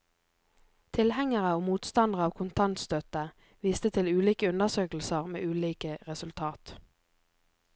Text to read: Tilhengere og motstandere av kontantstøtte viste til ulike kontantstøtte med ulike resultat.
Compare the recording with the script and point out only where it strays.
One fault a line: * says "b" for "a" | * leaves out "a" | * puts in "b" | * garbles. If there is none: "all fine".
* says "undersøkelser" for "kontantstøtte"